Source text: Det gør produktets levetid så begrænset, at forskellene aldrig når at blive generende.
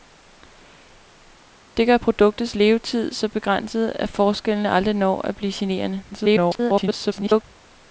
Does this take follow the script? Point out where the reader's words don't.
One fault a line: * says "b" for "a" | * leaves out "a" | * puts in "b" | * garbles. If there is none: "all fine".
* garbles